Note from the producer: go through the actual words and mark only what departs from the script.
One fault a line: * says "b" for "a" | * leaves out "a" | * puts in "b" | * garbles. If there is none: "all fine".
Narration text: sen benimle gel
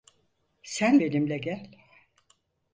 all fine